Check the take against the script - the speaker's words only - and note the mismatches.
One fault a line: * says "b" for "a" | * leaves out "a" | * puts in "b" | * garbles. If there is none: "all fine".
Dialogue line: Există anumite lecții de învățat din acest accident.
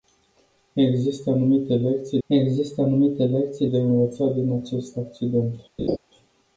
* puts in "există anumite lecții"